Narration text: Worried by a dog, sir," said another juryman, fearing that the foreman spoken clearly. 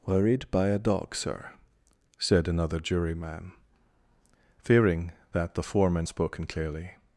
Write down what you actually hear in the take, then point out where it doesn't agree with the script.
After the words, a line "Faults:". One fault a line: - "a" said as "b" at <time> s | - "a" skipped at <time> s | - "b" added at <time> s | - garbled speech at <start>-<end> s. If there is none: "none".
Worried by a dog, sir," said another juryman, fearing that the foreman spoken clearly.
Faults:
none